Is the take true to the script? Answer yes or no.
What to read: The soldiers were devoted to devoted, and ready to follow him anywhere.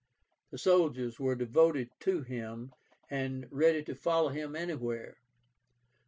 no